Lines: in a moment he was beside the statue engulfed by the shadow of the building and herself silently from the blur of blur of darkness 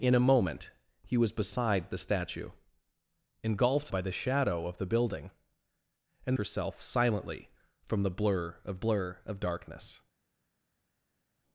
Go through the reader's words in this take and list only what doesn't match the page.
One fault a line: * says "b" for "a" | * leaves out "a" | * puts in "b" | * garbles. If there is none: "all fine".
all fine